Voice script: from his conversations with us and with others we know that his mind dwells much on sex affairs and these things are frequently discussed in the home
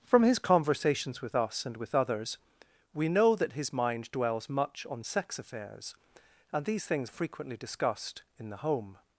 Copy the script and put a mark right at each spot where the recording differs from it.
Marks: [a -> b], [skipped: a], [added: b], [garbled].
from his conversations with us and with others we know that his mind dwells much on sex affairs and these things [skipped: are] frequently discussed in the home